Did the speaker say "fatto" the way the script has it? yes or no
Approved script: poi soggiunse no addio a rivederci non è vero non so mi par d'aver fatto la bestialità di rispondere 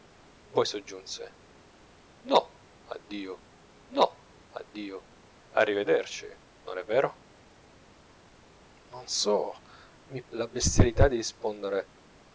no